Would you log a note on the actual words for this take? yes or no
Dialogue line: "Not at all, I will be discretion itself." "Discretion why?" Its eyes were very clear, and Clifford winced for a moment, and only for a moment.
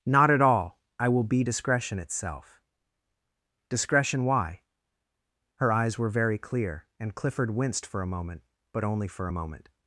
yes